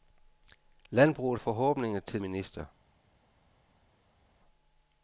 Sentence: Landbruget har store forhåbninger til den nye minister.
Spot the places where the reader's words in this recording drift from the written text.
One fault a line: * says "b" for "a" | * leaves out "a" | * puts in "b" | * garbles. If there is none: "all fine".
* leaves out "har store"
* leaves out "den nye"